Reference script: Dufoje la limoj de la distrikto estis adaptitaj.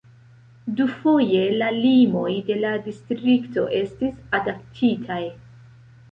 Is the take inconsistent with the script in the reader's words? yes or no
no